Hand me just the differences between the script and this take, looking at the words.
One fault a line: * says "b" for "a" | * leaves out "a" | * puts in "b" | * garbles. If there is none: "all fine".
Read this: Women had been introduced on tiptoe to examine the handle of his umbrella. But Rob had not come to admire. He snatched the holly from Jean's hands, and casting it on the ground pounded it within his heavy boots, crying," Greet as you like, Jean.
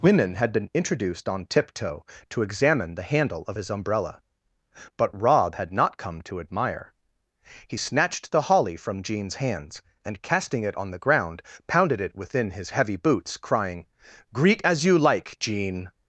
all fine